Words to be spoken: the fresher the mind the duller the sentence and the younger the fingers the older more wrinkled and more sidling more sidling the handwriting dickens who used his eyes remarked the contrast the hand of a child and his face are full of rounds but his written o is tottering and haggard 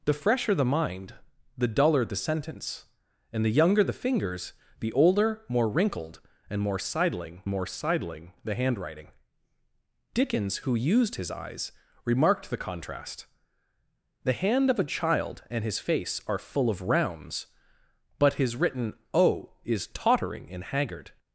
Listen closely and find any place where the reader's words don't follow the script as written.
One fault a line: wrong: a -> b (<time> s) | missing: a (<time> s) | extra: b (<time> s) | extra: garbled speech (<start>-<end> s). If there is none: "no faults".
no faults